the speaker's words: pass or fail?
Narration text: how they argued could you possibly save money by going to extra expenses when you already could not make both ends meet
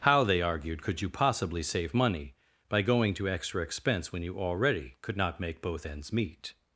fail